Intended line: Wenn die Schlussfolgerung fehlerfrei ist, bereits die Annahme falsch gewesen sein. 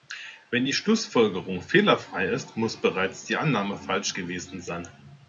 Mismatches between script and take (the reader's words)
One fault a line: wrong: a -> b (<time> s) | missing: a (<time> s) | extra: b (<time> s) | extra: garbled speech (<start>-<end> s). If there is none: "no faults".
extra: muss (2.6 s)